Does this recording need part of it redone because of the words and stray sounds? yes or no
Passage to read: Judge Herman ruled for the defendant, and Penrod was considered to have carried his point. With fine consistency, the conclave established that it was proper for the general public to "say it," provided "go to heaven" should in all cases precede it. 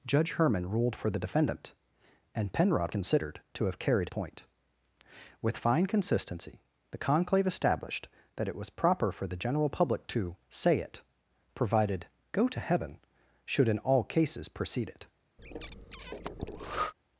yes